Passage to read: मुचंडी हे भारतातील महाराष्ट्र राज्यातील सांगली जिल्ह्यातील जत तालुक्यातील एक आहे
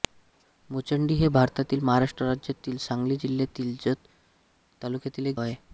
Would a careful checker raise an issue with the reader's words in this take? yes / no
no